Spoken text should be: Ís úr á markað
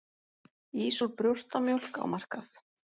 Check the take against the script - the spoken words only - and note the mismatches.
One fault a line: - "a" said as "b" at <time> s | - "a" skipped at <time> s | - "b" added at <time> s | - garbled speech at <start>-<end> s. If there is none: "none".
- "brjóstamjólk" added at 1.2 s